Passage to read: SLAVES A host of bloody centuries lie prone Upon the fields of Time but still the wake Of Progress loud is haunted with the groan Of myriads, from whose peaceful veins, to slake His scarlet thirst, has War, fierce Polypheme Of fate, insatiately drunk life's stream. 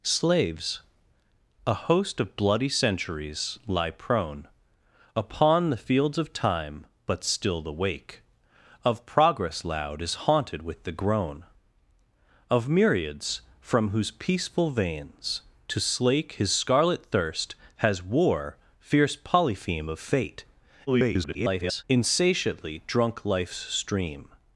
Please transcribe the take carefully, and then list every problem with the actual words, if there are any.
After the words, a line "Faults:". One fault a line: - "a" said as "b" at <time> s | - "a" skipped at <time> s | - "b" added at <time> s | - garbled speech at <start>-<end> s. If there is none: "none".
SLAVES A host of bloody centuries lie prone Upon the fields of Time but still the wake Of Progress loud is haunted with the groan Of myriads, from whose peaceful veins, to slake His scarlet thirst, has War, fierce Polypheme Of fate, [garbled] insatiately drunk life's stream.
Faults:
- garbled speech at 20.9-21.8 s